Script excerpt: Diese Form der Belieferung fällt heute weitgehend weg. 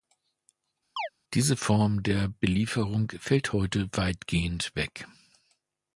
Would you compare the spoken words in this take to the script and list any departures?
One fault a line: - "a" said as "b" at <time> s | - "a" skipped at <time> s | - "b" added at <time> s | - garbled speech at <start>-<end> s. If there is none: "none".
none